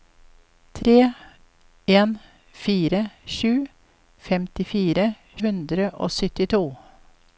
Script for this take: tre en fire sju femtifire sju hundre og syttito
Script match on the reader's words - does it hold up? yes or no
no